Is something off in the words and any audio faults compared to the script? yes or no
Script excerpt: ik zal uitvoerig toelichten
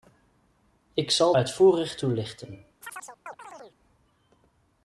yes